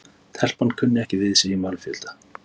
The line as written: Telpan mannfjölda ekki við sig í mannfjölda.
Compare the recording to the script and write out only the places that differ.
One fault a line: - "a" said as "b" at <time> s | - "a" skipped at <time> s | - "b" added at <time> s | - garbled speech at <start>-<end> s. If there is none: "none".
- "mannfjölda" said as "kunni" at 0.8 s